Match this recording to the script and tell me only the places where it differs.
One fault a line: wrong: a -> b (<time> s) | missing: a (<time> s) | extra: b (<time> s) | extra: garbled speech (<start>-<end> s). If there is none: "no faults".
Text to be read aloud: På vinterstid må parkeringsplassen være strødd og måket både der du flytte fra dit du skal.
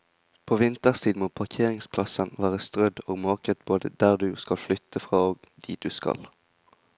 extra: skal (4.4 s)
extra: og (5.2 s)